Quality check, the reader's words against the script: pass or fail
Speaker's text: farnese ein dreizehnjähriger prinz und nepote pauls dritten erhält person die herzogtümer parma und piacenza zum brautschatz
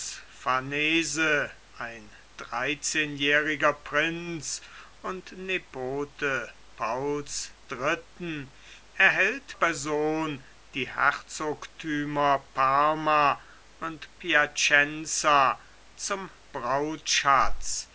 pass